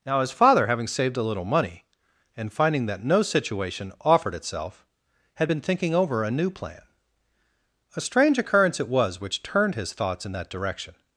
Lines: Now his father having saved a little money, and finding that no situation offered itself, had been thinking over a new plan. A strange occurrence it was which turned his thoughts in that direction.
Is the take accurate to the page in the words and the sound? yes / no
yes